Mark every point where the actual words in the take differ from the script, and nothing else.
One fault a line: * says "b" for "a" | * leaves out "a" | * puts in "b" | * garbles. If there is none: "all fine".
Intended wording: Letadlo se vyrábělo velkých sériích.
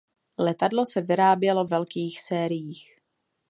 all fine